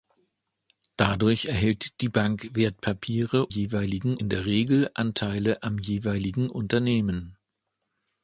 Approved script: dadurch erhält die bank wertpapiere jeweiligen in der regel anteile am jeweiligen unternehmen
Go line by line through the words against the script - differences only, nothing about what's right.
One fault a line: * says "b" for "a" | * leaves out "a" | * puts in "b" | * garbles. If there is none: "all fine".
all fine